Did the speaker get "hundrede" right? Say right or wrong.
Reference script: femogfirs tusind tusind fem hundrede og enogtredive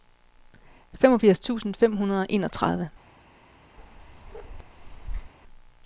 right